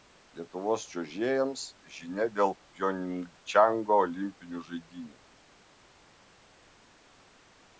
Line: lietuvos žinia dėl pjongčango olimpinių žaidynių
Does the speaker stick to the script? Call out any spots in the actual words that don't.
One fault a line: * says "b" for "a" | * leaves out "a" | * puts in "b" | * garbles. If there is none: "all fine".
* puts in "čiuožėjams"